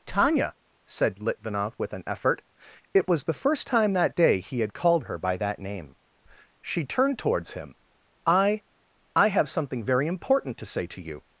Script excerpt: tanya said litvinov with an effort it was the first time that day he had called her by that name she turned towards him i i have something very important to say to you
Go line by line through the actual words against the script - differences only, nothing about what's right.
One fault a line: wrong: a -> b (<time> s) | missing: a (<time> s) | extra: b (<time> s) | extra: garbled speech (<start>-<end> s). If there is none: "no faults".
no faults